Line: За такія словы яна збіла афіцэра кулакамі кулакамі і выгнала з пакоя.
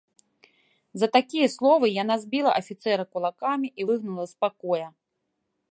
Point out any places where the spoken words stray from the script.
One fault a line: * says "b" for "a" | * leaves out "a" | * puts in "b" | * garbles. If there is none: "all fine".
* leaves out "кулакамі"